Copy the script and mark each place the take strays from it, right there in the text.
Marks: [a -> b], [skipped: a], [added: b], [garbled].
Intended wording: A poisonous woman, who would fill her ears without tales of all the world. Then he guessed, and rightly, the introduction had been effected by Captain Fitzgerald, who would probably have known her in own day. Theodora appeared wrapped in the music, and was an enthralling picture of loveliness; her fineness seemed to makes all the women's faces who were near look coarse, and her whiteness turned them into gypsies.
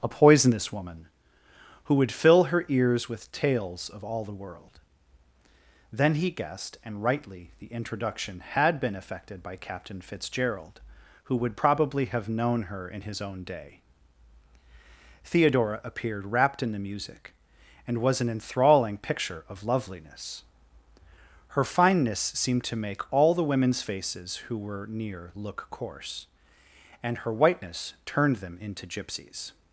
A poisonous woman, who would fill her ears [without -> with] tales of all the world. Then he guessed, and rightly, the introduction had been effected by Captain Fitzgerald, who would probably have known her in [added: his] own day. Theodora appeared wrapped in the music, and was an enthralling picture of loveliness; her fineness seemed to [makes -> make] all the women's faces who were near look coarse, and her whiteness turned them into gypsies.